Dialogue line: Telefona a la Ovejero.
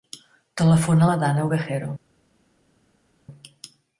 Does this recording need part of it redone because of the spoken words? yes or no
yes